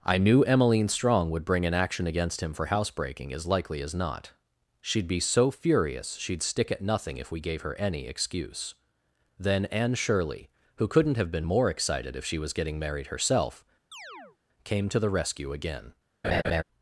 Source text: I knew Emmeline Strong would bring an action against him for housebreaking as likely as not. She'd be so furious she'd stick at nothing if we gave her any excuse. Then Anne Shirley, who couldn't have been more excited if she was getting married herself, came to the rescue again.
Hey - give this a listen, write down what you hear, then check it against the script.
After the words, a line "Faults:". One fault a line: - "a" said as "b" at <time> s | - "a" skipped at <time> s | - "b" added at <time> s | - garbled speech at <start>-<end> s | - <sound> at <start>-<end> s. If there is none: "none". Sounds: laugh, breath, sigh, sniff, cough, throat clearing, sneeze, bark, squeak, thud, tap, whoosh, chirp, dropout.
I knew Emmeline Strong would bring an action against him for housebreaking as likely as not. She'd be so furious she'd stick at nothing if we gave her any excuse. Then Anne Shirley, who couldn't have been more excited if she was getting married herself, came to the rescue again.
Faults:
- chirp at 13.9-14.4 s
- laugh at 16.2-16.6 s